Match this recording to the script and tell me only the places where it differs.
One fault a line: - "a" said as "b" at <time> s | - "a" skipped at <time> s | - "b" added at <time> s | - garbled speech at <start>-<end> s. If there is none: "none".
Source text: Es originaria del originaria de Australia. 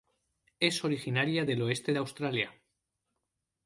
- "originaria" said as "oeste" at 1.6 s